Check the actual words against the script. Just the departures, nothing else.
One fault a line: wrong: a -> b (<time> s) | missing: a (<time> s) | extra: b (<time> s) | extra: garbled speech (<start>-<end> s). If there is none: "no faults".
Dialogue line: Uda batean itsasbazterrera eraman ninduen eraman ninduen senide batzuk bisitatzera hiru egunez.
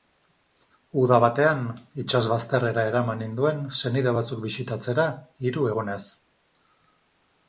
missing: eraman ninduen (3.6 s)